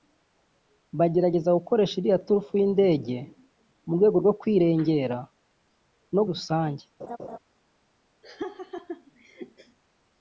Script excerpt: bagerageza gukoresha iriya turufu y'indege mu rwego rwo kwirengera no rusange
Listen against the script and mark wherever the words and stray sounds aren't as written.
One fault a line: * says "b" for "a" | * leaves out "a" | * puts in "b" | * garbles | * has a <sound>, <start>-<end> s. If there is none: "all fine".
* has a laugh, 7.0-7.4 s
* has a laugh, 8.2-9.8 s